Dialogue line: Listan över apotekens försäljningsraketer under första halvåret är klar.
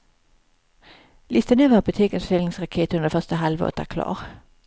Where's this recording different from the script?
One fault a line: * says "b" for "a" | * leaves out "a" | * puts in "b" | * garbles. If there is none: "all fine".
all fine